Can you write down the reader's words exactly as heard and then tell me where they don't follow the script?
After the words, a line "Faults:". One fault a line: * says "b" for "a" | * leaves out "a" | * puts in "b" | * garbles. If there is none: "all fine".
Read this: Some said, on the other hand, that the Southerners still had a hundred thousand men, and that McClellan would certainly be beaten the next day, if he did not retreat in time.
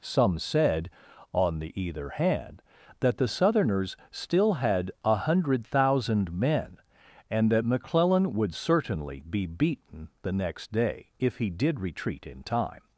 Some said, on the either hand, that the Southerners still had a hundred thousand men, and that McClellan would certainly be beaten the next day, if he did retreat in time.
Faults:
* says "either" for "other"
* leaves out "not"